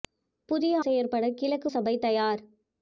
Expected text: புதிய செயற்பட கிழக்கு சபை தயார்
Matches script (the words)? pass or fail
pass